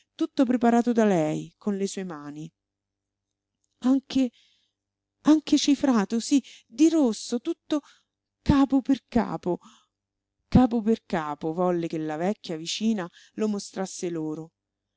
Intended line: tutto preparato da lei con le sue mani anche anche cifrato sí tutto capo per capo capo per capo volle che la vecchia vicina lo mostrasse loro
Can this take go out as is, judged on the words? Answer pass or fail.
fail